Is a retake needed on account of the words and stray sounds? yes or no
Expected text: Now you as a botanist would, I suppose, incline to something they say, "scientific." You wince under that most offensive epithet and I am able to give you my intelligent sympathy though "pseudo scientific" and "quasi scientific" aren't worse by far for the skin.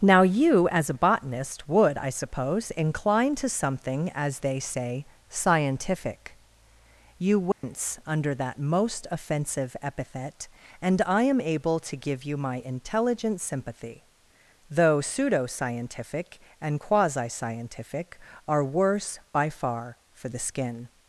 yes